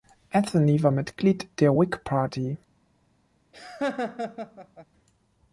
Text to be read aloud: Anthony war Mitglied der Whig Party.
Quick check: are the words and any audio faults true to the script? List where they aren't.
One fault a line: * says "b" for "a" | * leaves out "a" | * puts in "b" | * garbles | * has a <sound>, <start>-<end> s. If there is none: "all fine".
* has a laugh, 3.5-4.9 s